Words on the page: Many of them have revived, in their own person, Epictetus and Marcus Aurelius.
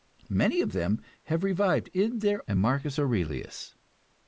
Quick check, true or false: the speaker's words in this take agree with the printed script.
false